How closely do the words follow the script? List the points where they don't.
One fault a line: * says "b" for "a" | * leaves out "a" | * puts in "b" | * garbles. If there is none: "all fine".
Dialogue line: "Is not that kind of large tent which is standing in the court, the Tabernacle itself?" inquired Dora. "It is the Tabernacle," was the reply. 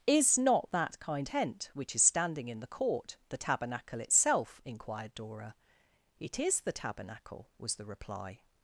* leaves out "of large"